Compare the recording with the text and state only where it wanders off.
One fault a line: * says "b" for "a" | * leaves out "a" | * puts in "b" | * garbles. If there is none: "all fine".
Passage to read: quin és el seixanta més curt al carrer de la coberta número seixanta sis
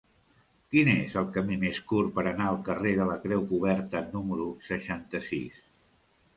* says "camí" for "seixanta"
* puts in "per anar"
* puts in "creu"